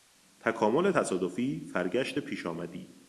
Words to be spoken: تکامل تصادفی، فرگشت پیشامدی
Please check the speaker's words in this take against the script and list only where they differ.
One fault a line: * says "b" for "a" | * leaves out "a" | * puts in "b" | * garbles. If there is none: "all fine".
all fine